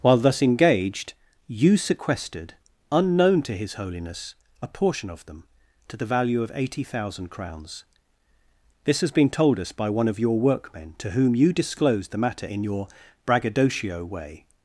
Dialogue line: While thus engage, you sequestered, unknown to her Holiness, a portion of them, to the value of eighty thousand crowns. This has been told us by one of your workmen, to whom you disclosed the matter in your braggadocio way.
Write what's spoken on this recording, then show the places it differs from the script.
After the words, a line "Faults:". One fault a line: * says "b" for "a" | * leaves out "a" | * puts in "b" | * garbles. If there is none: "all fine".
While thus engaged, you sequestered, unknown to his Holiness, a portion of them, to the value of eighty thousand crowns. This has been told us by one of your workmen, to whom you disclosed the matter in your braggadocio way.
Faults:
* says "engaged" for "engage"
* says "his" for "her"